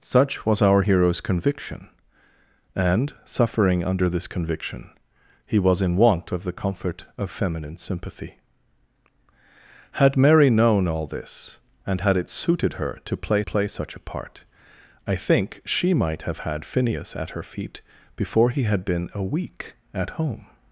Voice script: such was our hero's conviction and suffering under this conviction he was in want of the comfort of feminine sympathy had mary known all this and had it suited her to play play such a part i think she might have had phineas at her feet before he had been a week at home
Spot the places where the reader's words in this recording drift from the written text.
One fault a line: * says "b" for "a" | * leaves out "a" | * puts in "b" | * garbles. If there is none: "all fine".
all fine